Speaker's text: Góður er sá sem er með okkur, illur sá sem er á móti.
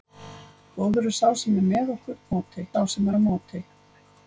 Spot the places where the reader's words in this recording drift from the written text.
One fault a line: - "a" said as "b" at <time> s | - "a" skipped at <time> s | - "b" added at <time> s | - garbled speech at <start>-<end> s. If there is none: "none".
- "illur" said as "móti" at 2.3 s